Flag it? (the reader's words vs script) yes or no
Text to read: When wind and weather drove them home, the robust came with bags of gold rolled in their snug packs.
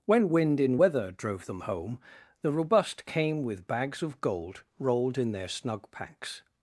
yes